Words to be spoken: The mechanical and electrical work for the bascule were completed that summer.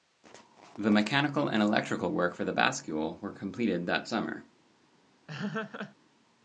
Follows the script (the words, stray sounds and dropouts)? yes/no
no